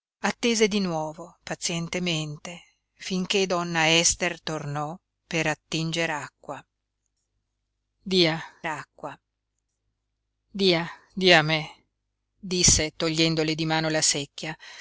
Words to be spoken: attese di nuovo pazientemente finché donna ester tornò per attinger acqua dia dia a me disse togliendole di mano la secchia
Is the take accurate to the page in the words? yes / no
no